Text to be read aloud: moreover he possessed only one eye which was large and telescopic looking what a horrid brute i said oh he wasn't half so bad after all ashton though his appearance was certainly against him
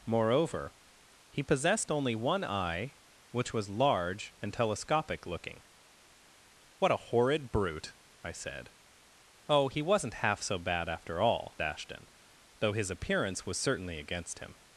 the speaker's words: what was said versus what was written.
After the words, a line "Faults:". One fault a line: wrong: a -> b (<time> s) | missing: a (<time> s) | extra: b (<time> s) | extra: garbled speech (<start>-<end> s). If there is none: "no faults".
moreover he possessed only one eye which was large and telescopic looking what a horrid brute i said oh he wasn't half so bad after all ashton though his appearance was certainly against him
Faults:
no faults